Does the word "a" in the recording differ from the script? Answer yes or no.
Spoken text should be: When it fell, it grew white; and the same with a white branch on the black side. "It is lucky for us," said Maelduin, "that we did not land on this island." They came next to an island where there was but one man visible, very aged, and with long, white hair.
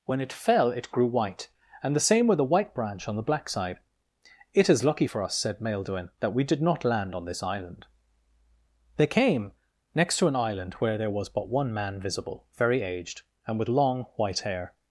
yes